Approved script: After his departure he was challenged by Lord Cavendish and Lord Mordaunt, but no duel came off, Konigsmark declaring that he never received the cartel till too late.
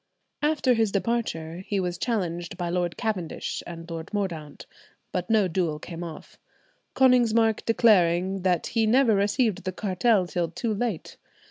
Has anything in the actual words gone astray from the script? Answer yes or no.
no